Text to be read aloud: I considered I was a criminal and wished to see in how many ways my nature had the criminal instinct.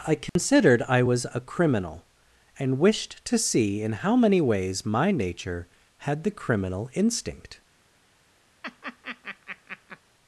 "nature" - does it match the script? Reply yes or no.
yes